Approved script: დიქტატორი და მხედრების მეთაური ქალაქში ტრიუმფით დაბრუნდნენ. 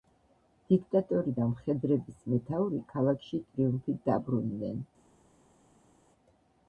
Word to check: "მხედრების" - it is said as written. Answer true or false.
true